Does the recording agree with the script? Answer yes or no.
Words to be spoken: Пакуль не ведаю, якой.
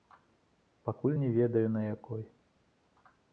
no